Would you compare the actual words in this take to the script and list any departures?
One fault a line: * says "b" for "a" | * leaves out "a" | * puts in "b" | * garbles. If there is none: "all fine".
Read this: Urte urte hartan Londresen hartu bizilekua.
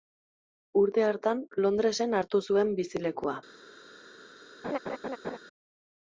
* leaves out "urte"
* puts in "zuen"